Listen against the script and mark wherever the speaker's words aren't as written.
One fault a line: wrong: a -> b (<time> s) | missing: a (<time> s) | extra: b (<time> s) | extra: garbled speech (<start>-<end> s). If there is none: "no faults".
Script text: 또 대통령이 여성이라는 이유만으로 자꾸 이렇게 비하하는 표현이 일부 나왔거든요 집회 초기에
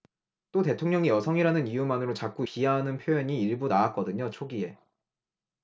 missing: 이렇게 (2.5 s)
missing: 집회 (4.3 s)